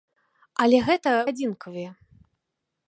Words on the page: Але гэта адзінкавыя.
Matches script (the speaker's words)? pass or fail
pass